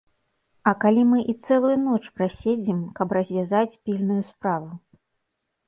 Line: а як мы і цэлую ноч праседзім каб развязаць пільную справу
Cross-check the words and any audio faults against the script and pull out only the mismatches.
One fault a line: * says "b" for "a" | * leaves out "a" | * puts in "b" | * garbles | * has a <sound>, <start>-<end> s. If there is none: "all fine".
* says "калі" for "як"